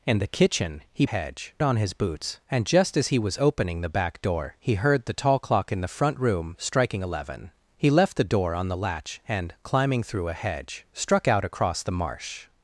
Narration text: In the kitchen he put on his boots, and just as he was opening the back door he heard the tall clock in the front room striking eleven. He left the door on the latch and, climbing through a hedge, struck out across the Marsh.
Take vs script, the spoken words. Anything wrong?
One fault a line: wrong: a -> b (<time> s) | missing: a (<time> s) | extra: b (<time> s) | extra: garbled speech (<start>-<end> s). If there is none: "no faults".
wrong: put -> hedge (1.0 s)